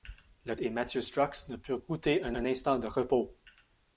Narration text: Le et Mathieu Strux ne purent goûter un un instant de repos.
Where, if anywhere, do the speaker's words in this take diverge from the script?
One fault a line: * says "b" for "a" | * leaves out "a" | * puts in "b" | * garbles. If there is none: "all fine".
all fine